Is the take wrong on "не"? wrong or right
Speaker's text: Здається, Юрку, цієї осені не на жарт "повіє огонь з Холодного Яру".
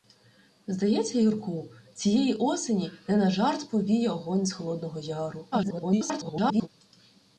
right